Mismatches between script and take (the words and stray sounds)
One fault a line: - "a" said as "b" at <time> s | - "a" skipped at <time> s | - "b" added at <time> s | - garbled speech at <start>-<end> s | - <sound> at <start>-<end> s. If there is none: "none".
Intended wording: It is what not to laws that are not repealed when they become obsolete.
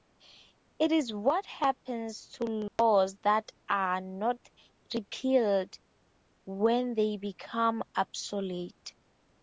- "not" said as "happens" at 1.4 s
- dropout at 2.7-2.8 s